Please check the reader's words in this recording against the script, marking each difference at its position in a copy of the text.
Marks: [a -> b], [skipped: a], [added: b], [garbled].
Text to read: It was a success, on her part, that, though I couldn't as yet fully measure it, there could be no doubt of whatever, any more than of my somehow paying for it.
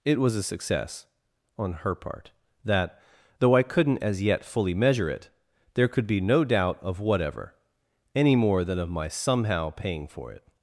It was a success, on her part, that, though I couldn't as yet fully measure it, there could be no doubt of whatever, any more than of my somehow paying for it.